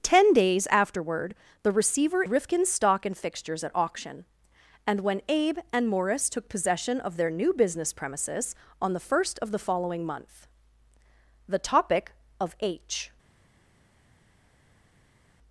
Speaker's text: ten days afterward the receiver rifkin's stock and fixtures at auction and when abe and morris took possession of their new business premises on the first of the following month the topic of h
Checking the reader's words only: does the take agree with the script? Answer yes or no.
yes